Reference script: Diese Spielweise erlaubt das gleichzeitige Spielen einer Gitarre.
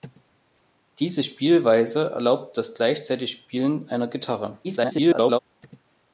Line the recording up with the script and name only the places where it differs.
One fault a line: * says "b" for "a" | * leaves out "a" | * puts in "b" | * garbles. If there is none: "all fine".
* garbles